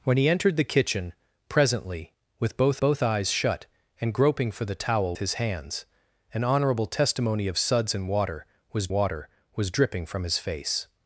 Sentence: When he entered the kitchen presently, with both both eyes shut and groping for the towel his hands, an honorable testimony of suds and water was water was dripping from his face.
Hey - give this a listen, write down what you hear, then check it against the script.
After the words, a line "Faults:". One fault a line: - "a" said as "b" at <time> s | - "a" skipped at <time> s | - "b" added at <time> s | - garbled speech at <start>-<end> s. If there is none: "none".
When he entered the kitchen presently, with both both eyes shut and groping for the towel his hands, an honorable testimony of suds and water was water was dripping from his face.
Faults:
none